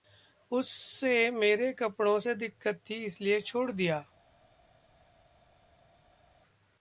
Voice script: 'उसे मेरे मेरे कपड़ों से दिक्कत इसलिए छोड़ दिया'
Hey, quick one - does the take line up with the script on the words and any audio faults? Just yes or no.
no